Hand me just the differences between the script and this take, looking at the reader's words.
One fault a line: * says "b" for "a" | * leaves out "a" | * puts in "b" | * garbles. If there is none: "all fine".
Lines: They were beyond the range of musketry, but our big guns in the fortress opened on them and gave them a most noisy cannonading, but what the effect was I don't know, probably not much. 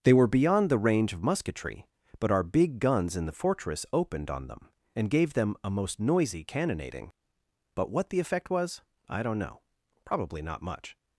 all fine